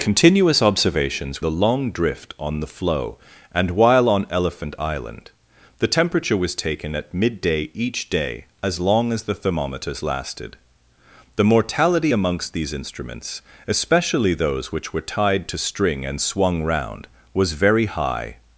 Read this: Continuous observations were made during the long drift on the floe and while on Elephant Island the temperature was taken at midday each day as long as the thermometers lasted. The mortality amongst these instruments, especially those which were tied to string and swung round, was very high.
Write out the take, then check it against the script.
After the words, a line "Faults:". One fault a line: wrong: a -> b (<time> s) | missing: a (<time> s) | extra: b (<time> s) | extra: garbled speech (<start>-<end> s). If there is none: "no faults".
Continuous observations the long drift on the floe and while on Elephant Island the temperature was taken at midday each day as long as the thermometers lasted. The mortality amongst these instruments, especially those which were tied to string and swung round, was very high.
Faults:
missing: were made during (1.4 s)